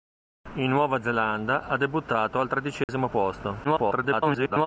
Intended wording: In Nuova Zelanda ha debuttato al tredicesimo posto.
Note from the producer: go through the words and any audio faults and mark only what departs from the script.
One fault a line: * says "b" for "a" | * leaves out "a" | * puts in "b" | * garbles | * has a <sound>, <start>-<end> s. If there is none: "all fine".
* has a dropout, 2.8-2.9 s
* garbles